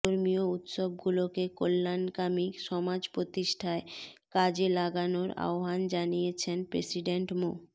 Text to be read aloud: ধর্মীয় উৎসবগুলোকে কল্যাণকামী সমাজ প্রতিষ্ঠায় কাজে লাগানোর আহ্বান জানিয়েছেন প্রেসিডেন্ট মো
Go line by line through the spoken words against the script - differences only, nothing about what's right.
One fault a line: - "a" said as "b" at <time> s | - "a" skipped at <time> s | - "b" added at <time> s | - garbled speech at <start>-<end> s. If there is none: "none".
none